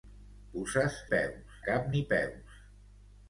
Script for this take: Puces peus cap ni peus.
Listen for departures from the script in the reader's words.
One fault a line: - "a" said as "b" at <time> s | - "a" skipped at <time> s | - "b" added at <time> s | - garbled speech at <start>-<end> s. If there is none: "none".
none